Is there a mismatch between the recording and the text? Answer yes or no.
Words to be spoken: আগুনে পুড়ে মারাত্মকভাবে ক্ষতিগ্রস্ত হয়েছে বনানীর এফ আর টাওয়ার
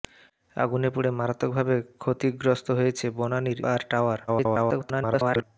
yes